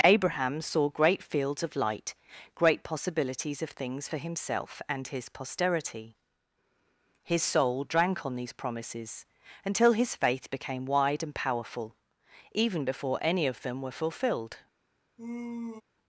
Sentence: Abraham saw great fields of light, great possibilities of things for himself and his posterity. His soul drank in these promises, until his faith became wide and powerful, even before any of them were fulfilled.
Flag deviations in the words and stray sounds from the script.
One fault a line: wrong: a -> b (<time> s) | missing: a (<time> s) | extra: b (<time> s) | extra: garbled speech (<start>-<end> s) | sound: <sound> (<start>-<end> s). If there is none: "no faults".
wrong: in -> on (8.2 s)
sound: sigh (15.2-15.8 s)